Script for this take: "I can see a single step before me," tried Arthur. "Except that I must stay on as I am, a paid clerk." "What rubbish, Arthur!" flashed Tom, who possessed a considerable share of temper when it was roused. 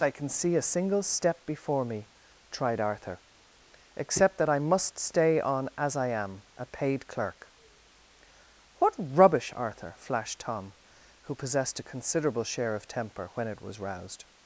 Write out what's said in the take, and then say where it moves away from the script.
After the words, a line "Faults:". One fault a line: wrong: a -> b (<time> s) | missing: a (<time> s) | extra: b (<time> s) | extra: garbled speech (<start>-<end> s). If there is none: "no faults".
"I can see a single step before me," tried Arthur. "Except that I must stay on as I am, a paid clerk." "What rubbish, Arthur!" flashed Tom, who possessed a considerable share of temper when it was roused.
Faults:
no faults